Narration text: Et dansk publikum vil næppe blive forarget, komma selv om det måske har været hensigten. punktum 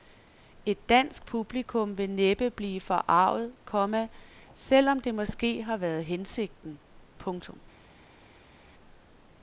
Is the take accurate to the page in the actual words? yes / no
yes